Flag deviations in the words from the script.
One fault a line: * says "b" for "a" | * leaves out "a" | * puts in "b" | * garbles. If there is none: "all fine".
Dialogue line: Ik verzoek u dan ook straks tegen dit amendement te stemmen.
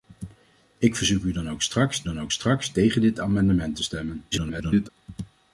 * puts in "dan ook straks"
* garbles